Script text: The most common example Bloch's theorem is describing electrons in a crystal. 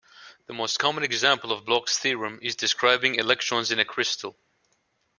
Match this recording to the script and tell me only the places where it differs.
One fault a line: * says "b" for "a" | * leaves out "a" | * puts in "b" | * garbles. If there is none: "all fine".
* puts in "of"